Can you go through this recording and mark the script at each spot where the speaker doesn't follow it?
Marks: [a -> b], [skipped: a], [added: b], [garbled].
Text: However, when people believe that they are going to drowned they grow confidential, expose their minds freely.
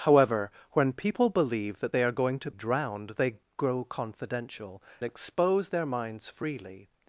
However, when people believe that they are going to drowned they grow confidential, expose their minds freely.